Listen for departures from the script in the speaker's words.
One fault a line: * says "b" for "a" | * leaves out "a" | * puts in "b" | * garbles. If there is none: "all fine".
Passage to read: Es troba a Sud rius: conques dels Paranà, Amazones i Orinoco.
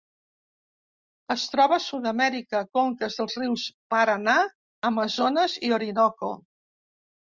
* says "amèrica" for "rius"
* puts in "rius"